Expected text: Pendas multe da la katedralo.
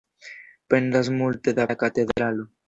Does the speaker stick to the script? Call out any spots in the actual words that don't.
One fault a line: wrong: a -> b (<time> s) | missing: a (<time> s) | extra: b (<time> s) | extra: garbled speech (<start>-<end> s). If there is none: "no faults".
no faults